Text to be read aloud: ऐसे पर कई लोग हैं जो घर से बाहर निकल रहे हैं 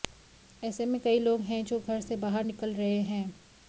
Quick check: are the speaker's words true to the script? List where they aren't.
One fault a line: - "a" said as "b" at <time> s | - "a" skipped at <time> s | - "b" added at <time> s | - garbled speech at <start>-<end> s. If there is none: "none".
- "पर" said as "में" at 0.8 s